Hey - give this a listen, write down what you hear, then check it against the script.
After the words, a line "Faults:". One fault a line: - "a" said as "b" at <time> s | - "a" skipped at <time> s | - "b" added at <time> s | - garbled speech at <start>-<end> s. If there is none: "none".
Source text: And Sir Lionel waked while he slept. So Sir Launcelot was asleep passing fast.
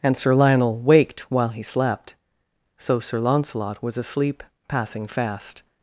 And Sir Lionel waked while he slept. So Sir Launcelot was asleep passing fast.
Faults:
none